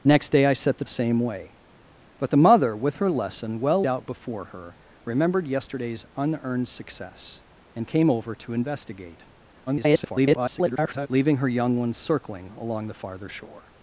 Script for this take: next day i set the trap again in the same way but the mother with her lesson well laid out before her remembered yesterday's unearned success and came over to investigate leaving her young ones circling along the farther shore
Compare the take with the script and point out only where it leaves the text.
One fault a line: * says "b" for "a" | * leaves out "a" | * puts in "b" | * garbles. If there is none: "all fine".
* leaves out "trap again in"
* leaves out "laid"
* garbles